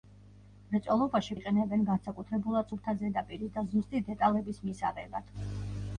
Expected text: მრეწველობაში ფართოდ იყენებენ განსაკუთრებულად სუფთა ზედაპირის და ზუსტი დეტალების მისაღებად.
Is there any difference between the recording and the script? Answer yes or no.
yes